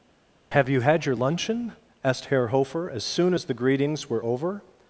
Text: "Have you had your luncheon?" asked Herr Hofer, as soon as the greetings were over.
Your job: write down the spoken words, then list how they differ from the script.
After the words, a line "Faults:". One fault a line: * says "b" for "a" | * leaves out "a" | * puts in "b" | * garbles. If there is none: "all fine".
"Have you had your luncheon?" asked Herr Hofer, as soon as the greetings were over.
Faults:
all fine